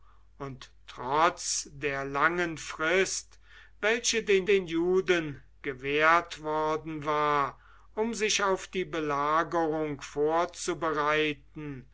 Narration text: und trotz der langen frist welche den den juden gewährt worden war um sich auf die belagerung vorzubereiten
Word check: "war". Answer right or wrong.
right